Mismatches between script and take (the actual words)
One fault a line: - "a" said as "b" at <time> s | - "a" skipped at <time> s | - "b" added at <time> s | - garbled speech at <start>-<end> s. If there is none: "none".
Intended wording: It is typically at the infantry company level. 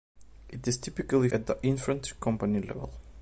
none